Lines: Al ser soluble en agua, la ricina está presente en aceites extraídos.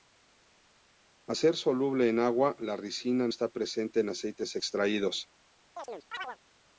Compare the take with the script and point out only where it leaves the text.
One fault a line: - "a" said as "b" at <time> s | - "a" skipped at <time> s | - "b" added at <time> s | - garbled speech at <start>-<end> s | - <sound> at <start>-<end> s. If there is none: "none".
- chirp at 5.8-6.4 s